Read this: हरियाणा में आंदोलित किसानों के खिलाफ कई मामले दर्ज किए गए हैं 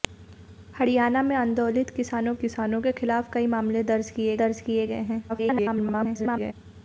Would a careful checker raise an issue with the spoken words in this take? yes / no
yes